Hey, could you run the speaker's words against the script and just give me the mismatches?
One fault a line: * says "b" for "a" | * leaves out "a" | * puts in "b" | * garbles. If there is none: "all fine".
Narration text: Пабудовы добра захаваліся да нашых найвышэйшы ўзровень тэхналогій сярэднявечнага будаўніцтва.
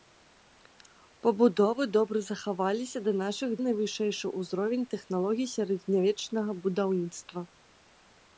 all fine